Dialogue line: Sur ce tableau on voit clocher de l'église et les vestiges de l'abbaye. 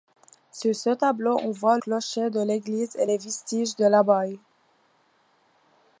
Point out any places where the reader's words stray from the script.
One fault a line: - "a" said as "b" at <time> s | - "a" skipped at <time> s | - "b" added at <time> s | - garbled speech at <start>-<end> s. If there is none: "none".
none